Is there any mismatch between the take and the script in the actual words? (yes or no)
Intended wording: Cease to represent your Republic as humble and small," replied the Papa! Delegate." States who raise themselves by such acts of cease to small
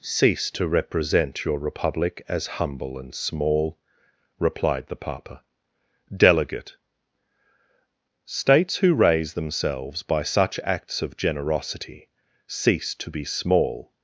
yes